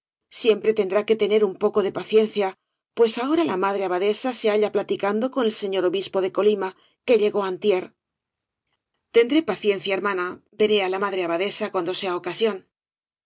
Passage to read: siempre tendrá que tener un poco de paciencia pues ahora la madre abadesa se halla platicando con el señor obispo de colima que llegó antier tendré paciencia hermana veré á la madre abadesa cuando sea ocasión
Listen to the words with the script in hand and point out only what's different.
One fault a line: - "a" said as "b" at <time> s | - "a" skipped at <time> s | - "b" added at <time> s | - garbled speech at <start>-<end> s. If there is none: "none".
none